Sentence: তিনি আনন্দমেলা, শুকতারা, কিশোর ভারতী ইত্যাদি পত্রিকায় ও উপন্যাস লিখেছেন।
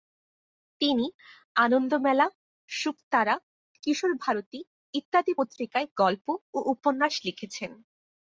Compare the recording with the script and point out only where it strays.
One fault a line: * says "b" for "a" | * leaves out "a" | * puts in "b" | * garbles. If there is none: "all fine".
* puts in "গল্প"